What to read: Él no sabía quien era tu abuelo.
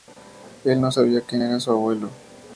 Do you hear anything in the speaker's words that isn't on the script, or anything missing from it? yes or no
yes